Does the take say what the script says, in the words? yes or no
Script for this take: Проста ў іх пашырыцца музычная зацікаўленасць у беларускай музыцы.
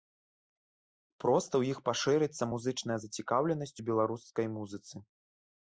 yes